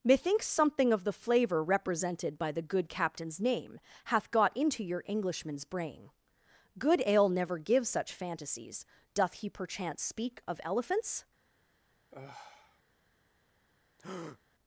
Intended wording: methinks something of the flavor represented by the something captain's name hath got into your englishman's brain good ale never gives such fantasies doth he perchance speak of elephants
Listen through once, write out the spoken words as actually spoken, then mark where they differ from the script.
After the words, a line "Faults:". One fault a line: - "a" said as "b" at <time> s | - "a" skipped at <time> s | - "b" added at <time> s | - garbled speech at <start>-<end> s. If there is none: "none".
methinks something of the flavor represented by the good captain's name hath got into your englishman's brain good ale never gives such fantasies doth he perchance speak of elephants
Faults:
- "something" said as "good" at 2.6 s